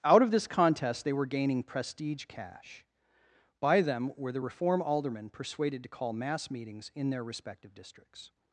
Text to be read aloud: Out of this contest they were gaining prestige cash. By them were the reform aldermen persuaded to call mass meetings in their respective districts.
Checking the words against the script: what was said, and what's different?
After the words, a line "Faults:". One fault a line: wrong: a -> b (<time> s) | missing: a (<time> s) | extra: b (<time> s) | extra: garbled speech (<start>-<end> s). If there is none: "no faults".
Out of this contest they were gaining prestige cash. By them were the reform aldermen persuaded to call mass meetings in their respective districts.
Faults:
no faults